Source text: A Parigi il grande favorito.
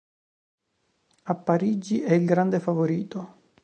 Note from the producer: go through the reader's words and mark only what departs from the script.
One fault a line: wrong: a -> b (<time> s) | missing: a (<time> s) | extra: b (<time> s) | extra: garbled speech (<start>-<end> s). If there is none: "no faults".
extra: è (2.0 s)